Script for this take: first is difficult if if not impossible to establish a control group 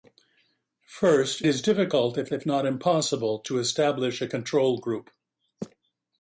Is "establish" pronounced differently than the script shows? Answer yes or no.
no